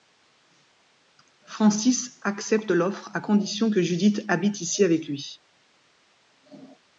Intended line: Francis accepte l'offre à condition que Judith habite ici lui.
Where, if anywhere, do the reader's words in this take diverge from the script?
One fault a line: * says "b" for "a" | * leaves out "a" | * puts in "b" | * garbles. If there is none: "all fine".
* puts in "avec"